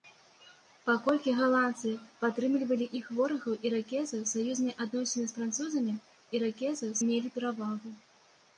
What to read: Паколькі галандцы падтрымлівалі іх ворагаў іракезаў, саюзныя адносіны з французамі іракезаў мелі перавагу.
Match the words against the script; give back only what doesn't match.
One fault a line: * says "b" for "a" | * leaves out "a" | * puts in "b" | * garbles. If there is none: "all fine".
all fine